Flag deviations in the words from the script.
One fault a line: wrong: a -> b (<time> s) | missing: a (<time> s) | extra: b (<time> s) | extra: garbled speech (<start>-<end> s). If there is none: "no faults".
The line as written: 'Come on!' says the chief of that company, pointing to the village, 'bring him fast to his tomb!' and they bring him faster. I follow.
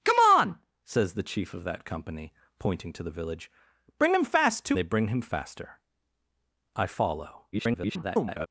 missing: his tomb and (4.8 s)
extra: garbled speech (7.5-8.5 s)